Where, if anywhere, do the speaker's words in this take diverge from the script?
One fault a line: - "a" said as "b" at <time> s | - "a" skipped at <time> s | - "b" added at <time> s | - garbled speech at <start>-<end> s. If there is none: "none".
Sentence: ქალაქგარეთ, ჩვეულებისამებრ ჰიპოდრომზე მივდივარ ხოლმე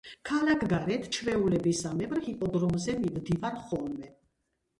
none